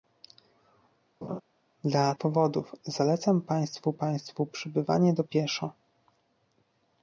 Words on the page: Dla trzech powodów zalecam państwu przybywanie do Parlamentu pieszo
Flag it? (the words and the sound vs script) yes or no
yes